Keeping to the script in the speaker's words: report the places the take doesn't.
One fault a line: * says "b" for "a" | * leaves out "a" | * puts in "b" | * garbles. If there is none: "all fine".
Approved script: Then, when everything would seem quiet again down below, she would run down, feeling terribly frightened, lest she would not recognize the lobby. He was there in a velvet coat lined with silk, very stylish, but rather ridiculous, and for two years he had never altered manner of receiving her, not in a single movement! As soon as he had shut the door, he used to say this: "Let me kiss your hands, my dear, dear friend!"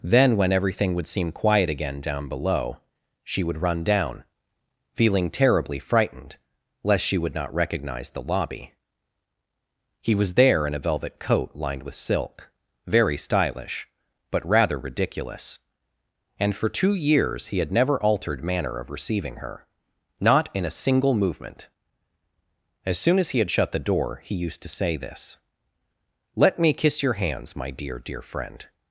all fine